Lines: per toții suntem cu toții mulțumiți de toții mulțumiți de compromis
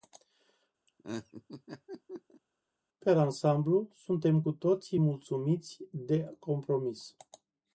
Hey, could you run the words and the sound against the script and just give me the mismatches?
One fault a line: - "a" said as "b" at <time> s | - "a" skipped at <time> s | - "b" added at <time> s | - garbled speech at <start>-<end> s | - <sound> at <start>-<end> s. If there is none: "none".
- laugh at 0.9-2.4 s
- "toții" said as "ansamblu" at 3.2 s
- "toții mulțumiți de" skipped at 6.4 s